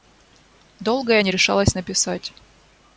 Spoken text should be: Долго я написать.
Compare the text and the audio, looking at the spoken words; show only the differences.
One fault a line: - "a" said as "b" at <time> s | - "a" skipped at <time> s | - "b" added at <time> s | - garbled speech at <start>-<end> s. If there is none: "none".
- "не решалась" added at 1.2 s